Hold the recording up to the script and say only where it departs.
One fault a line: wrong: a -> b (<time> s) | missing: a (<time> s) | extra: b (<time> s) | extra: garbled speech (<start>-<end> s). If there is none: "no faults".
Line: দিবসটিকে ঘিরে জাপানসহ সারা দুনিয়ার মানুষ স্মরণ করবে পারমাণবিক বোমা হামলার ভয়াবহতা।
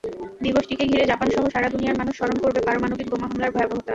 no faults